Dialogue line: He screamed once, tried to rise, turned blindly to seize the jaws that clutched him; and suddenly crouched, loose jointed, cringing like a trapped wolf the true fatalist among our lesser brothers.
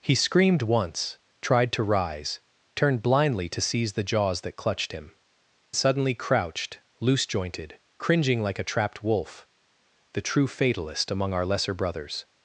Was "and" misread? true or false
true